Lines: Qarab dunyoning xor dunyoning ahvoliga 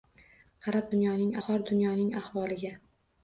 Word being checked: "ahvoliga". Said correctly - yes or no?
yes